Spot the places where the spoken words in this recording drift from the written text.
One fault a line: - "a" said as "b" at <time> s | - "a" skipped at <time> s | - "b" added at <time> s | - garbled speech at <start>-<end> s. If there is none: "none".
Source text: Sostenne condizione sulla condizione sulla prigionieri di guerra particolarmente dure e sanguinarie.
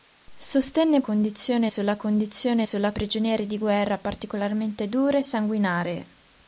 none